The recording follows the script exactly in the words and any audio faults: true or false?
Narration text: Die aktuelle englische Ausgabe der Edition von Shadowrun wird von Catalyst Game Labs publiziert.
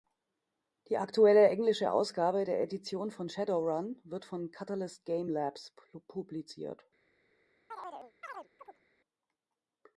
false